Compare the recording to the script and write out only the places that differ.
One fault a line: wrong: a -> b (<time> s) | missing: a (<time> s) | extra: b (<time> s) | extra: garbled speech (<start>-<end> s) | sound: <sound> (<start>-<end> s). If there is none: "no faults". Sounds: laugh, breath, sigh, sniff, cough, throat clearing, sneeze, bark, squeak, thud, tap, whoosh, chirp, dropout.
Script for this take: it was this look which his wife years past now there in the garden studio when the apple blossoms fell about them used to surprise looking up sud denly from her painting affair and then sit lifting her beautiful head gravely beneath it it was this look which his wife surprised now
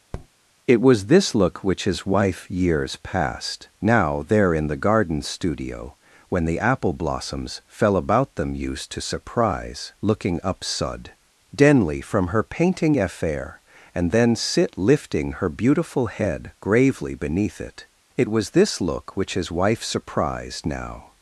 sound: tap (0.1-0.3 s)